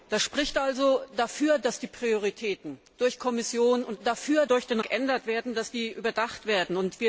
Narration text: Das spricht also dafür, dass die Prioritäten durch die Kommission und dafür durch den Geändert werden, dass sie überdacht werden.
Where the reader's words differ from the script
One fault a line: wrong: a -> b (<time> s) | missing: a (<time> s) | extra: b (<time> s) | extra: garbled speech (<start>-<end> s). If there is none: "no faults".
no faults